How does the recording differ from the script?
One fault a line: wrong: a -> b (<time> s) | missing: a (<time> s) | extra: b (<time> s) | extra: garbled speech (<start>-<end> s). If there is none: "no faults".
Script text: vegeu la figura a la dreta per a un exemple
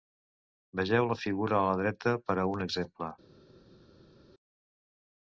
no faults